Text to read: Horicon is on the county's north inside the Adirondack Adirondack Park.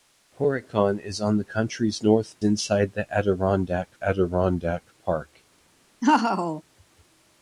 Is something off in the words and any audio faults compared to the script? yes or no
yes